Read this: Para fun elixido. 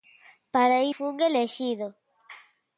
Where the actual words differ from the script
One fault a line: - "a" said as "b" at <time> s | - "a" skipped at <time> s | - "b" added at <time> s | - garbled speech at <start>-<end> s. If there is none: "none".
none